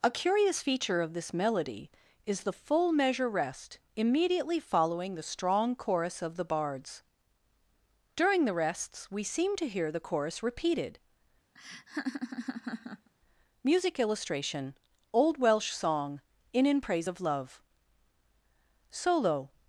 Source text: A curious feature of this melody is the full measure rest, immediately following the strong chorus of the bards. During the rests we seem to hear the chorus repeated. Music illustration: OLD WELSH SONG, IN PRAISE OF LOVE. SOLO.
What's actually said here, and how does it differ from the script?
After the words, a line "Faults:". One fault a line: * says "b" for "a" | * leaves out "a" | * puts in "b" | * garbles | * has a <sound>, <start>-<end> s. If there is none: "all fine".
A curious feature of this melody is the full measure rest, immediately following the strong chorus of the bards. During the rests we seem to hear the chorus repeated. Music illustration: OLD WELSH SONG, IN IN PRAISE OF LOVE. SOLO.
Faults:
* has a laugh, 11.5-13.1 s
* puts in "IN"